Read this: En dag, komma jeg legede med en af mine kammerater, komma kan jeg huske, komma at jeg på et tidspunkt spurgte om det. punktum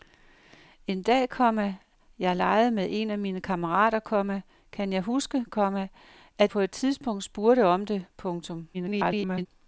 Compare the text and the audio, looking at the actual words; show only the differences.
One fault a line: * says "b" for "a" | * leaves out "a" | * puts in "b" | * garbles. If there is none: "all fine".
* leaves out "jeg"
* garbles